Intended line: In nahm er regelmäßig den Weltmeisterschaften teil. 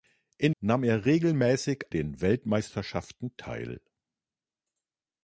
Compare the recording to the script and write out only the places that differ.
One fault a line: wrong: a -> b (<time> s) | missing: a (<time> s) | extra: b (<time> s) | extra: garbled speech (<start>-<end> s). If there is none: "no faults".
no faults